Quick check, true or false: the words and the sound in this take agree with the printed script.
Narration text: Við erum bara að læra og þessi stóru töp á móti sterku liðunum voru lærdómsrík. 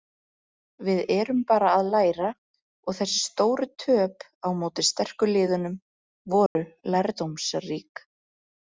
false